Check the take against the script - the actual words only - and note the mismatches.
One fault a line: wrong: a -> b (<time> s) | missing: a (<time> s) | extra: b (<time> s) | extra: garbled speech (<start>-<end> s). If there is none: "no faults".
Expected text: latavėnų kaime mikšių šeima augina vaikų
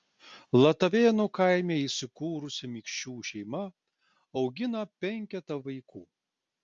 extra: įsikūrusi (1.8 s)
extra: penketą (5.1 s)